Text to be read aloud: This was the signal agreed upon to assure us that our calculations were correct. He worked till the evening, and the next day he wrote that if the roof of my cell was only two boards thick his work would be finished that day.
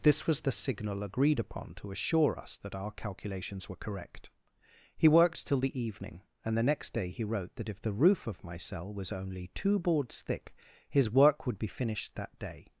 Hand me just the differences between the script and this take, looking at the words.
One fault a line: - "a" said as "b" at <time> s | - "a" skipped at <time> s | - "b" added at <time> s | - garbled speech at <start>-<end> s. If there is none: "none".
none